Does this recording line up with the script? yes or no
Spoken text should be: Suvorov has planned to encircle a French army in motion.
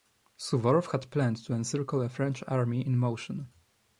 no